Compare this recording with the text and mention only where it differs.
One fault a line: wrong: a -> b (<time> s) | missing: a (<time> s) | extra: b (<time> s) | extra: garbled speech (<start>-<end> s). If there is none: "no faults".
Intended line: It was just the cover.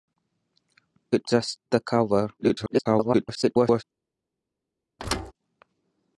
missing: was (1.3 s)
extra: garbled speech (2.4-3.8 s)